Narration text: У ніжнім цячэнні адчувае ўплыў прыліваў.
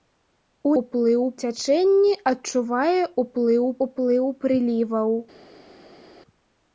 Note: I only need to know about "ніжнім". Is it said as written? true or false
false